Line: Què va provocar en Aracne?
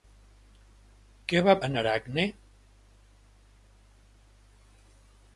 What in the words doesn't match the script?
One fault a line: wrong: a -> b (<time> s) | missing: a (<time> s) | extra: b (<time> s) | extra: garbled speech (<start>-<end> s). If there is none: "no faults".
missing: provocar (1.6 s)